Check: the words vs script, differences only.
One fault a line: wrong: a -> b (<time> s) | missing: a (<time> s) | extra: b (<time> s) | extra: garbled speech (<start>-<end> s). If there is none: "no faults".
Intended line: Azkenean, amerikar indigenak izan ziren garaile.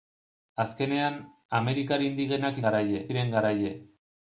wrong: izan -> garaile (2.7 s)